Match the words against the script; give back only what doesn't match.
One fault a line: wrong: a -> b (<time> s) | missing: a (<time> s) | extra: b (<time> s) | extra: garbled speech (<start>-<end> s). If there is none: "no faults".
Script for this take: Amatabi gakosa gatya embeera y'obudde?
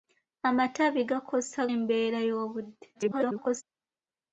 missing: gatya (1.6 s)
extra: garbled speech (2.9-3.6 s)